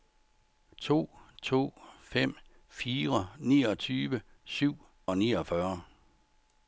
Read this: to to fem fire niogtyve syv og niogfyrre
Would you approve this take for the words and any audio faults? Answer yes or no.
yes